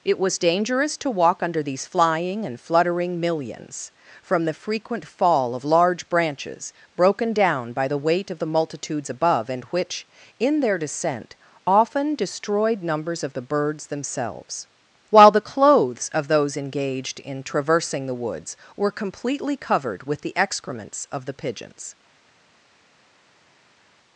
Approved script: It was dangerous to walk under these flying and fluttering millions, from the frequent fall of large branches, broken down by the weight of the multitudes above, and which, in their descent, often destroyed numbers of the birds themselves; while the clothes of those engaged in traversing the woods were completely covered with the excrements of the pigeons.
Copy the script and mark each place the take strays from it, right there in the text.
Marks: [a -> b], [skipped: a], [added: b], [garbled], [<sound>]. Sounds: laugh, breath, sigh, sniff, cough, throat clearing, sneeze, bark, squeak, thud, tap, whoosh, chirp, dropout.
It was dangerous to walk under these flying and fluttering millions, from the frequent fall of large branches, broken down by the weight of the multitudes above, and which, in their descent, often destroyed numbers of the birds themselves; while the clothes of those engaged in traversing the woods were completely covered with the excrements of the pigeons.